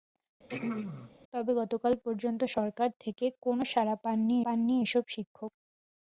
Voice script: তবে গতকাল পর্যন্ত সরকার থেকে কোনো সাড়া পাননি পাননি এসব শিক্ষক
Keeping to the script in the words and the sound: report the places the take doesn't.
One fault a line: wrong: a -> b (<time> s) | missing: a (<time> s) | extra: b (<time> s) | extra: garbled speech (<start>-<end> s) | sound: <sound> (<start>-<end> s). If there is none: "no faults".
sound: throat clearing (0.5-1.1 s)